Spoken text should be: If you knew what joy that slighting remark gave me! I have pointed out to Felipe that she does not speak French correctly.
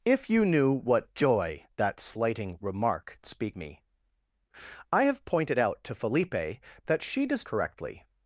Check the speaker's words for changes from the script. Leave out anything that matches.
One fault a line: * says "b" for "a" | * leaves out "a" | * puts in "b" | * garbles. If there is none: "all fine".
* says "speak" for "gave"
* leaves out "not speak French"